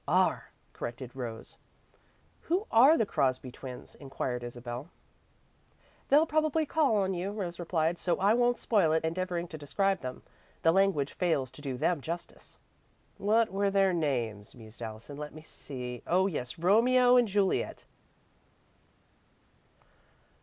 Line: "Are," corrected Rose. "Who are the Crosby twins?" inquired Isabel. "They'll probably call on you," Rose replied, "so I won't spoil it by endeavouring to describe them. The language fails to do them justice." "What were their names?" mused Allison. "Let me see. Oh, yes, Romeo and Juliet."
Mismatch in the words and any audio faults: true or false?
true